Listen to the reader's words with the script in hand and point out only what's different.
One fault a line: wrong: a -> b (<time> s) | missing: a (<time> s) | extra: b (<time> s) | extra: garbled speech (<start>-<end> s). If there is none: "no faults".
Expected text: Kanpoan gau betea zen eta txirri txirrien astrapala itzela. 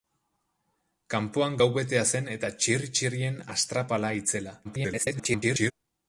extra: garbled speech (4.6-5.7 s)